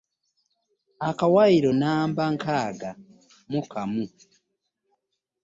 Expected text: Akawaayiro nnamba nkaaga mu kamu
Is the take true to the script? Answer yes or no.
yes